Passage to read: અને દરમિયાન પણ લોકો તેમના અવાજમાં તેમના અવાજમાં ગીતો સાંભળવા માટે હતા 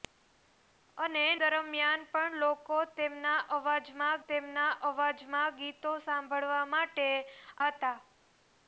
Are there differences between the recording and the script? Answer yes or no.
no